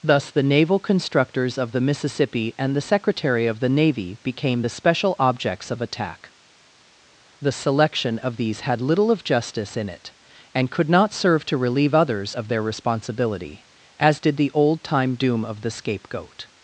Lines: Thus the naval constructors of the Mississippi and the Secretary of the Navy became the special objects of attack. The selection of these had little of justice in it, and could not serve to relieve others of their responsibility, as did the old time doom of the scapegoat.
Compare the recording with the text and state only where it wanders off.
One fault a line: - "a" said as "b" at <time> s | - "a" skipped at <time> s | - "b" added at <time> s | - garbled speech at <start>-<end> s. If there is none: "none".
none